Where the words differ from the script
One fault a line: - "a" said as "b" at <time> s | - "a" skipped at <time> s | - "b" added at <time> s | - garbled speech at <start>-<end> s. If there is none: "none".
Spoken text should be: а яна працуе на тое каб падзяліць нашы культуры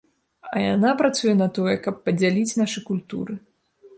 none